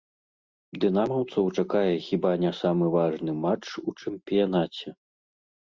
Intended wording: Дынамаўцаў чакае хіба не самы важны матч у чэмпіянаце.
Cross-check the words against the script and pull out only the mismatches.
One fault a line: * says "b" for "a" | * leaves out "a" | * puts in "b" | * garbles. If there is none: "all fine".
all fine